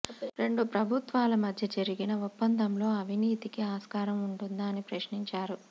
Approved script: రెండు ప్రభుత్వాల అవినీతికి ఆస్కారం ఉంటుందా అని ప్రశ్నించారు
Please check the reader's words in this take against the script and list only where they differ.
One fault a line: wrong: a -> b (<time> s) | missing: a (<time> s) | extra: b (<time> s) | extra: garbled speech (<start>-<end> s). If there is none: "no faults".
extra: మధ్య జరిగిన ఒప్పందంలో (1.4 s)